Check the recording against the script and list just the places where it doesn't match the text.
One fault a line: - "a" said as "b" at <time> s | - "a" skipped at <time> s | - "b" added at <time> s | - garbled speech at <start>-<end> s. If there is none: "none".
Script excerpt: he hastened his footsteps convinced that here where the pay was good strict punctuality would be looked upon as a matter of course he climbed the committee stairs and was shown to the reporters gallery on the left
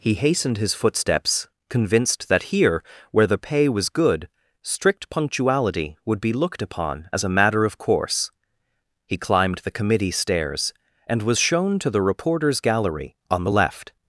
none